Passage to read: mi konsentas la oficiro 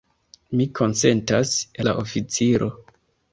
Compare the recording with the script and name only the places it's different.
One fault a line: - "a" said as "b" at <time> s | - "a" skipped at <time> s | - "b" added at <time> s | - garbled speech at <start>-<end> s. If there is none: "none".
none